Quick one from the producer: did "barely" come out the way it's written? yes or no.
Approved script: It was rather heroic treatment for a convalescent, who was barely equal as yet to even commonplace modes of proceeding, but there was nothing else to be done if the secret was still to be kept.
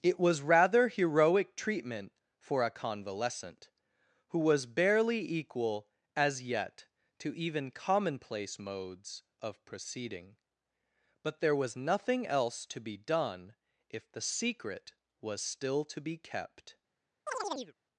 yes